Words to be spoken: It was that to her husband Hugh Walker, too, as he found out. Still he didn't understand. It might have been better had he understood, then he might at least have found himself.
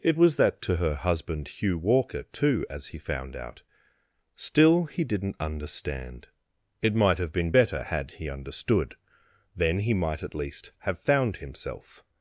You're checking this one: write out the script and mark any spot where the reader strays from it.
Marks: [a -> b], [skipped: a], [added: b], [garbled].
It was that to her husband Hugh Walker, too, as he found out. Still he didn't understand. It might have been better had he understood, then he might at least have found himself.